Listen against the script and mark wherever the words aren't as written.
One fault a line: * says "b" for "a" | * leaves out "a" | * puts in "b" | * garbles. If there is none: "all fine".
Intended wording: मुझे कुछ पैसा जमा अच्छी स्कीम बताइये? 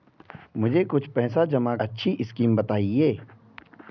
all fine